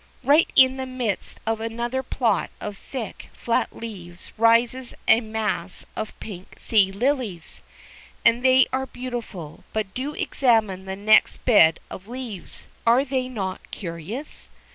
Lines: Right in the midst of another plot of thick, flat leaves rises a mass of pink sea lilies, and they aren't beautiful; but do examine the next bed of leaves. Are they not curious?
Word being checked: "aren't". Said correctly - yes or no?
no